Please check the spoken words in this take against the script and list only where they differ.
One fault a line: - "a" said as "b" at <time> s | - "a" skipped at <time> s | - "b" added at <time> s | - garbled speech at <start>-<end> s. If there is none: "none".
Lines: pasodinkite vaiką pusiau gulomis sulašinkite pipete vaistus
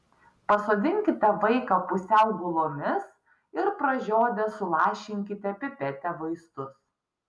- "ir pražiodę" added at 3.6 s